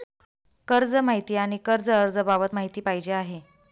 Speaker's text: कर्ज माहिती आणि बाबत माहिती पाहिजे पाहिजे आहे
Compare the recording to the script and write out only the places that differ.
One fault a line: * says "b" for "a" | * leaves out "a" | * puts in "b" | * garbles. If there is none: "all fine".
* puts in "कर्ज अर्ज"
* leaves out "पाहिजे"